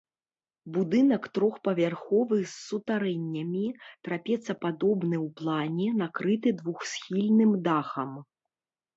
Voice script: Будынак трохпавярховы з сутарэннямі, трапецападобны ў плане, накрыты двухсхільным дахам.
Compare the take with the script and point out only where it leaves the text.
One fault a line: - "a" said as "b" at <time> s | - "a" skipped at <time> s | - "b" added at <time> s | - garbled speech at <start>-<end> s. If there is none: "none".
none